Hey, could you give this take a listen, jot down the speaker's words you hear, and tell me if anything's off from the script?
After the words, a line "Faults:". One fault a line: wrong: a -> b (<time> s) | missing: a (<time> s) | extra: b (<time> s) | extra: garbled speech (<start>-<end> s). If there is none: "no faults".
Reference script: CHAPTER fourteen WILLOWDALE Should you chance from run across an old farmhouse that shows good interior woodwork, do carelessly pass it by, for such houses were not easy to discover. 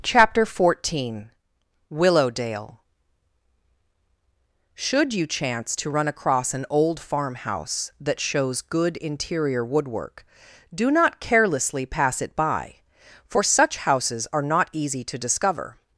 CHAPTER fourteen WILLOWDALE Should you chance to run across an old farmhouse that shows good interior woodwork, do not carelessly pass it by, for such houses are not easy to discover.
Faults:
wrong: from -> to (5.8 s)
extra: not (10.9 s)
wrong: were -> are (14.3 s)